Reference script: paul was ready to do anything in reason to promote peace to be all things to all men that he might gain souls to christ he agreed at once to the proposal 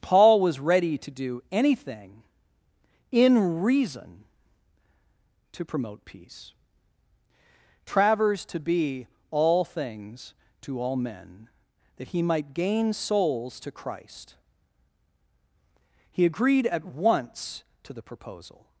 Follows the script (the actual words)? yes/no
no